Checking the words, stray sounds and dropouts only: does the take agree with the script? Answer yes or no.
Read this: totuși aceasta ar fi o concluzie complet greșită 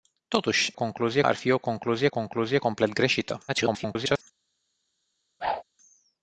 no